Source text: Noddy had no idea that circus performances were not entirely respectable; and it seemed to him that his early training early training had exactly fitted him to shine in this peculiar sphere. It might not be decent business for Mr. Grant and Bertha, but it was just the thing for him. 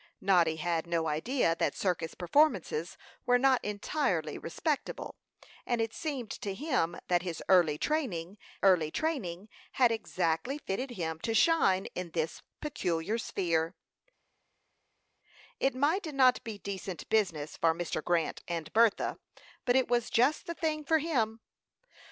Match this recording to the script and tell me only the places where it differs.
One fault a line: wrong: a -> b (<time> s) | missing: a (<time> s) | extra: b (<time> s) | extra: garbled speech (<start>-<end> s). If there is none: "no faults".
no faults